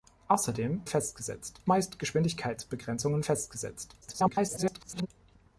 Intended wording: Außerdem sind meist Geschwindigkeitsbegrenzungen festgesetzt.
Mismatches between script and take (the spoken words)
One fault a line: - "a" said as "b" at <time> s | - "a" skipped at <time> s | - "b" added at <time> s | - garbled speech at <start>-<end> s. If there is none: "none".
- "sind" said as "festgesetzt" at 0.9 s
- garbled speech at 4.0-5.1 s